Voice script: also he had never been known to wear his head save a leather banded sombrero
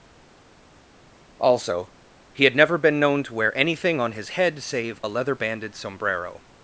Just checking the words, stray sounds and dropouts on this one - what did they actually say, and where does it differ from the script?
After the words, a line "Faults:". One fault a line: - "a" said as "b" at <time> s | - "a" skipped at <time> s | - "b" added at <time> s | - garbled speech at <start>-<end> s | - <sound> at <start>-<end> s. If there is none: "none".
also he had never been known to wear anything on his head save a leather banded sombrero
Faults:
- "anything on" added at 3.6 s